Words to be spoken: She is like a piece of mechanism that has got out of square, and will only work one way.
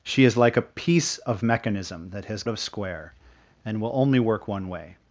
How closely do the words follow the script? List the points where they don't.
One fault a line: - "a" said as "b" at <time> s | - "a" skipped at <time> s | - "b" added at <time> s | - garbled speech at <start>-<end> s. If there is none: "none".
- "got out" skipped at 2.4 s